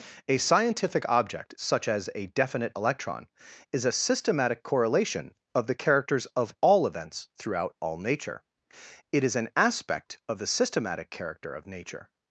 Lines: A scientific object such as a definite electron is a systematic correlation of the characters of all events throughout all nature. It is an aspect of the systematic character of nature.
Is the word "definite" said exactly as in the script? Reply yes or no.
yes